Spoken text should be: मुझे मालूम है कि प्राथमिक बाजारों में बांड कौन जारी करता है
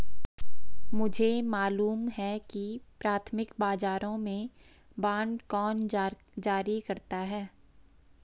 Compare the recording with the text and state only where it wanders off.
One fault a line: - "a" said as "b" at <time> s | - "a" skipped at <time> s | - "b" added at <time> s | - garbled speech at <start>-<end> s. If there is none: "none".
none